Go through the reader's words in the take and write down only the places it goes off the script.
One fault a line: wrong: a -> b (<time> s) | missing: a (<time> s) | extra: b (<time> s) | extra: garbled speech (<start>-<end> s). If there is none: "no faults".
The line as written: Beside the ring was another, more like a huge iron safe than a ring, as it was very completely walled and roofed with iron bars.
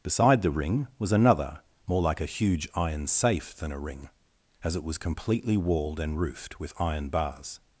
missing: very (5.0 s)